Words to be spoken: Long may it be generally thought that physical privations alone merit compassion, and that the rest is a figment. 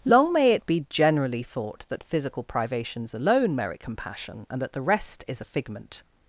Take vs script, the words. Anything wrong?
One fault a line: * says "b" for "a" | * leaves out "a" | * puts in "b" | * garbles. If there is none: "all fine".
all fine